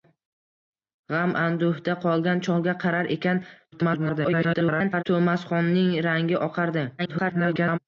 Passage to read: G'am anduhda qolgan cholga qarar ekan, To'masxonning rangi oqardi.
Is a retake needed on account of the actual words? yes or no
yes